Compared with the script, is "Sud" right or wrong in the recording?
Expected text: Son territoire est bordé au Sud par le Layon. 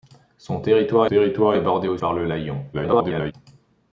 wrong